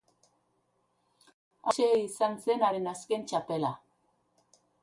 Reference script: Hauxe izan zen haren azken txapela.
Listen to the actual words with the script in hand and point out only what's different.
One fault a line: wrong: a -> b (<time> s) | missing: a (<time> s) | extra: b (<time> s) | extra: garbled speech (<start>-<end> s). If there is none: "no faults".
no faults